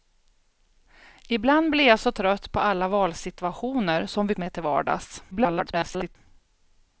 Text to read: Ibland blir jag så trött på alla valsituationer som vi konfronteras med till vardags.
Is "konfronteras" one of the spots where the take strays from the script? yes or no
yes